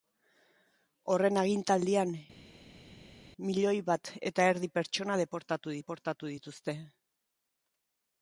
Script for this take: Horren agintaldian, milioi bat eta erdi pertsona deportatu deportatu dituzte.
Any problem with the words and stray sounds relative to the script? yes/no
no